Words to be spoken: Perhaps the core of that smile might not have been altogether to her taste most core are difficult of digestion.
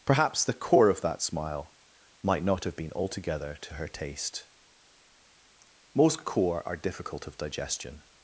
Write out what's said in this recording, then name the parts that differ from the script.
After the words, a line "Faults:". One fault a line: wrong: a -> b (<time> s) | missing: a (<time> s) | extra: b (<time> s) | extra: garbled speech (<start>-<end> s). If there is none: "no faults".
Perhaps the core of that smile might not have been altogether to her taste most core are difficult of digestion.
Faults:
no faults